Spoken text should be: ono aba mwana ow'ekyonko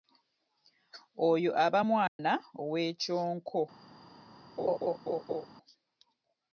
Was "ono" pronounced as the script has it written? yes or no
no